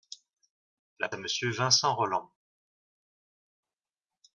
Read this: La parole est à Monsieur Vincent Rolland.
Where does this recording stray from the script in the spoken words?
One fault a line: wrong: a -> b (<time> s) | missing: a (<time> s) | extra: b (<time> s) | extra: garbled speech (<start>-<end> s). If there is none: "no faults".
missing: parole est (1.1 s)